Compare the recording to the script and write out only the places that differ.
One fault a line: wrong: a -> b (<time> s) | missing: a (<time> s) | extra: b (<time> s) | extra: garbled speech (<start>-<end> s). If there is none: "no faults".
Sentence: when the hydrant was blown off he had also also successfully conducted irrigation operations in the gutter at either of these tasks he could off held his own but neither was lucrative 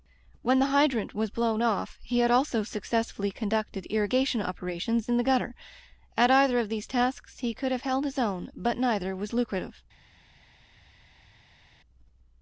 missing: also (2.6 s)
wrong: off -> have (7.7 s)